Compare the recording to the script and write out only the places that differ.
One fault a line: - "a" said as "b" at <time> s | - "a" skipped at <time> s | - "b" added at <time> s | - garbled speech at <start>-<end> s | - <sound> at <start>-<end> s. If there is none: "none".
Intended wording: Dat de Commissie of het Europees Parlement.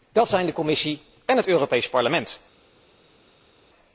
- "zijn" added at 0.3 s
- "of" said as "en" at 1.2 s